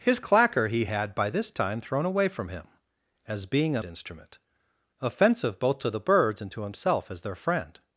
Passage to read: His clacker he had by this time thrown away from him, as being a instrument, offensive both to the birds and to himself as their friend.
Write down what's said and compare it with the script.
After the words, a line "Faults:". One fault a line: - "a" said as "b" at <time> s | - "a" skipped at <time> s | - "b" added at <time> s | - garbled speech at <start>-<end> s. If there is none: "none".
His clacker he had by this time thrown away from him, as being a instrument, offensive both to the birds and to himself as their friend.
Faults:
none